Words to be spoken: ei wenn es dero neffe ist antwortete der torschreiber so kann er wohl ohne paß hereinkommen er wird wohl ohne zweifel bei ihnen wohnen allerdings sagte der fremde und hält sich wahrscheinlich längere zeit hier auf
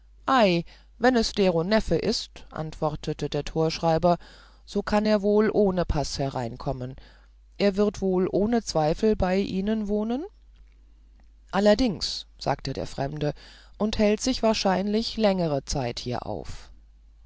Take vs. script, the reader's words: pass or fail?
pass